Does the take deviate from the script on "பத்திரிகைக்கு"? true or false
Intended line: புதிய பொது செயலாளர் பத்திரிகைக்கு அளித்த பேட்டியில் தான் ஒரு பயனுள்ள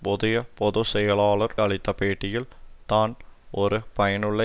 true